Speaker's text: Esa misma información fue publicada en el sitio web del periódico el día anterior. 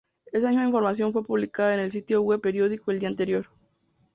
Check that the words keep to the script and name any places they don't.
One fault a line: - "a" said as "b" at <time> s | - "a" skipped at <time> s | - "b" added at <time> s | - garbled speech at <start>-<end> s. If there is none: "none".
- "del" skipped at 2.4 s